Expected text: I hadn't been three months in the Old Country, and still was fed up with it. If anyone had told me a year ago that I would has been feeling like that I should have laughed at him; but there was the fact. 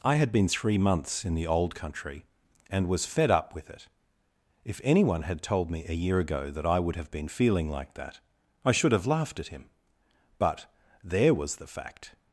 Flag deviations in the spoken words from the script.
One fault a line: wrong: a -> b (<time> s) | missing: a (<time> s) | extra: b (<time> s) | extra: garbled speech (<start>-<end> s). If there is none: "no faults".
wrong: hadn't -> had (0.1 s)
missing: still (2.9 s)
wrong: has -> have (7.0 s)